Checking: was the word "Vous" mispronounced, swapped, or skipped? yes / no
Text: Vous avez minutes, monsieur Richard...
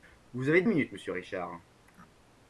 no